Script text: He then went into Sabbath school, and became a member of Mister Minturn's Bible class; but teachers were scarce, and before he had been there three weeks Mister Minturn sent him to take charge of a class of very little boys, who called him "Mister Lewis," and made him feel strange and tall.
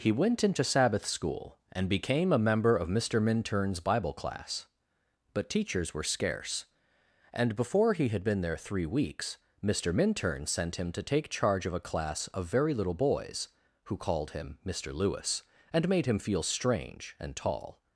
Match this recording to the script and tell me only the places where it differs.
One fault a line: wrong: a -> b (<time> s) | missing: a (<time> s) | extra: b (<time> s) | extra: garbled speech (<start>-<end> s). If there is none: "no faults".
missing: then (0.1 s)